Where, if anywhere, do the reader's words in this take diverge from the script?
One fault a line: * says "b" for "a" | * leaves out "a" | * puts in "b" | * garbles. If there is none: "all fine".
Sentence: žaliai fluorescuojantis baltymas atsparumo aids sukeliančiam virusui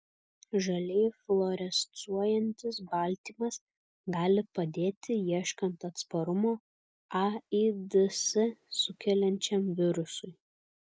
* puts in "gali padėti ieškant"